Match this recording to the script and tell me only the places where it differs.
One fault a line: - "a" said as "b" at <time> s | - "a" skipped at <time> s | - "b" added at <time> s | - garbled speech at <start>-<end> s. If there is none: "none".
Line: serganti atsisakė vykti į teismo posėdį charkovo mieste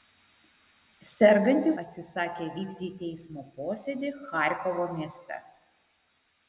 none